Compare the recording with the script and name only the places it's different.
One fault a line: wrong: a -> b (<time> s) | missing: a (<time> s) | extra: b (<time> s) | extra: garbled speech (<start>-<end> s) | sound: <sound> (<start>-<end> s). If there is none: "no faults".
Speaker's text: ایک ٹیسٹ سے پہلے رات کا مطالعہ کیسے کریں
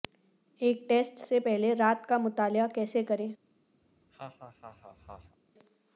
sound: laugh (3.8-5.4 s)